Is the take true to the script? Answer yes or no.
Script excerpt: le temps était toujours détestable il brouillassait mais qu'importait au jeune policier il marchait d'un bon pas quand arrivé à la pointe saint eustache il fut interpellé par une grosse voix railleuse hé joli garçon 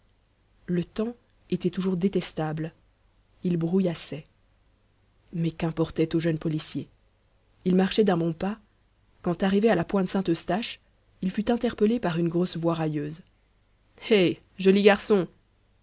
yes